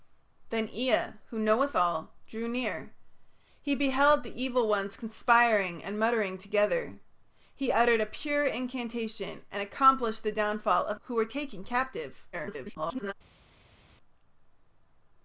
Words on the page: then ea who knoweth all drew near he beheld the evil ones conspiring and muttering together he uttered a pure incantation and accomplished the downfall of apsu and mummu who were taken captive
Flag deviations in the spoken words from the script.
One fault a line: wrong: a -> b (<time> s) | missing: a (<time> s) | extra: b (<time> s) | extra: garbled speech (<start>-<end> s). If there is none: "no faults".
missing: apsu and mummu (11.0 s)
extra: garbled speech (12.3-13.1 s)